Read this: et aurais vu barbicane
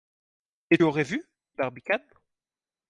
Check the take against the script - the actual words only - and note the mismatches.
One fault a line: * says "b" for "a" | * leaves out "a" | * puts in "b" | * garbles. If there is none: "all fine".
all fine